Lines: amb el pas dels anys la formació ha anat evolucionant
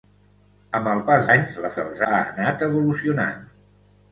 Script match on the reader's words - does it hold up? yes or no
no